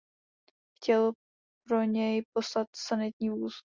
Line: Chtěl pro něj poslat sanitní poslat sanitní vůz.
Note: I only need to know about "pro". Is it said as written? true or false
true